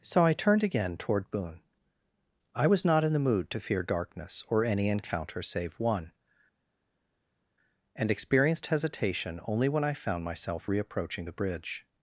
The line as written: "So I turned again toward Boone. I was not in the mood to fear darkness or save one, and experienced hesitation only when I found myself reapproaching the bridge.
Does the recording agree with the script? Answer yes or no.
no